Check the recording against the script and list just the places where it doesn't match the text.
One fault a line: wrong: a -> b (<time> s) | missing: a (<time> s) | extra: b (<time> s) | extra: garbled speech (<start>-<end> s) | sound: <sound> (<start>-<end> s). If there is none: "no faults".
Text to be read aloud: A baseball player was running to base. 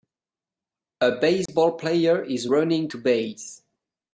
sound: dropout (1.5-1.5 s)
wrong: was -> is (2.2 s)